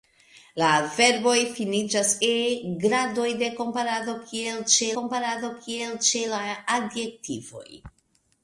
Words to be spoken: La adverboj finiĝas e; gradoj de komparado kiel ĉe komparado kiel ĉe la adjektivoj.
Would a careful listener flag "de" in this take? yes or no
no